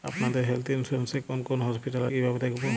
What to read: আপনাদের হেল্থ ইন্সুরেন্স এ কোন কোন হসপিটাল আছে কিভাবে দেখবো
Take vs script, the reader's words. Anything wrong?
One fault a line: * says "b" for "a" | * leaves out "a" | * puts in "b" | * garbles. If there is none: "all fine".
* leaves out "আছে"